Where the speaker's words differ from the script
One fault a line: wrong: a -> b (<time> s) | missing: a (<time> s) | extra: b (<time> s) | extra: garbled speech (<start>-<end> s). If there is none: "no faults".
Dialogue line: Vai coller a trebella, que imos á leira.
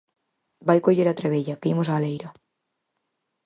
no faults